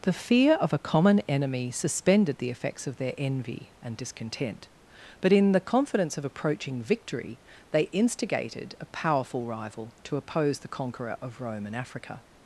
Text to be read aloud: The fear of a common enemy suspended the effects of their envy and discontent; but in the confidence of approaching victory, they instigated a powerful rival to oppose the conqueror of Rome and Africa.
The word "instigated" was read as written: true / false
true